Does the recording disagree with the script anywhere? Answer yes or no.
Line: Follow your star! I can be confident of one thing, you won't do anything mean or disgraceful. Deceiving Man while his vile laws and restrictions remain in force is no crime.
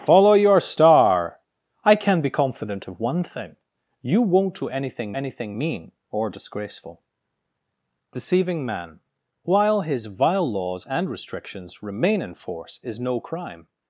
yes